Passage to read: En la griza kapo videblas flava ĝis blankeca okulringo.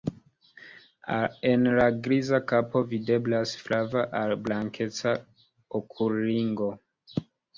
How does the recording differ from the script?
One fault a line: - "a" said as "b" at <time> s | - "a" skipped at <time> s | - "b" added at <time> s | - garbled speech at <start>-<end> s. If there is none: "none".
- "ĝis" said as "al" at 4.2 s